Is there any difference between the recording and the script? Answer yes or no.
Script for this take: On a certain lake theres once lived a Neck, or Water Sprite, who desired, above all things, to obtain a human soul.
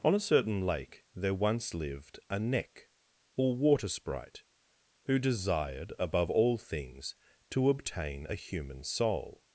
yes